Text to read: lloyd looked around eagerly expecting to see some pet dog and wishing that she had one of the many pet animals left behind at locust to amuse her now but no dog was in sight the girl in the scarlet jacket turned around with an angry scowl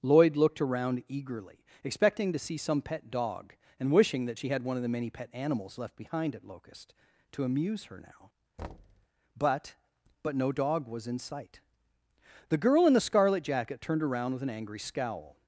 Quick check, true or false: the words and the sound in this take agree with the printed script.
false